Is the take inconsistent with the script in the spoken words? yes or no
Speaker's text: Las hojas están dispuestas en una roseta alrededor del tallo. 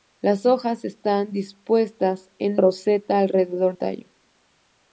yes